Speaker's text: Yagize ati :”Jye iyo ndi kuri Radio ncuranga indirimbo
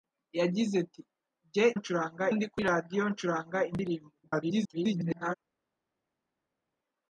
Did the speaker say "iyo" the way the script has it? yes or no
no